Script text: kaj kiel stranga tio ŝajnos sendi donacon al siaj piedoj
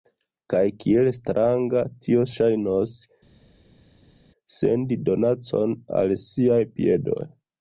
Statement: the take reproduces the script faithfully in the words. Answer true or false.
true